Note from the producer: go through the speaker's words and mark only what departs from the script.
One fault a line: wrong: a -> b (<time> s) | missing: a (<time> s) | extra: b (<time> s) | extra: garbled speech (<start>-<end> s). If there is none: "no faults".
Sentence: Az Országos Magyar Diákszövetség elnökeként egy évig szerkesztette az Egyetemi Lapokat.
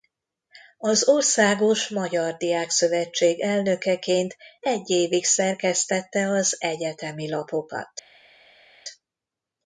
no faults